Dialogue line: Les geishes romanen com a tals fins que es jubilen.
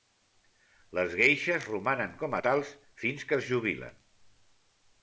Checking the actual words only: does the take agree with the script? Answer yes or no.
yes